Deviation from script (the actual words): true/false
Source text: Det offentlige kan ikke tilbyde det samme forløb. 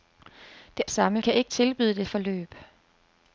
true